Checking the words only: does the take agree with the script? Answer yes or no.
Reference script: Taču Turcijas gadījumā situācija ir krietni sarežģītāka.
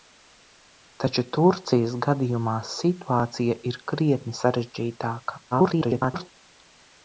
no